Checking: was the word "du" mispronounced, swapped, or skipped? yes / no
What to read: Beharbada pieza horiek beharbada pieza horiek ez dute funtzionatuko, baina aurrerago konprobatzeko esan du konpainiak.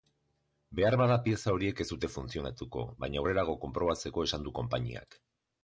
no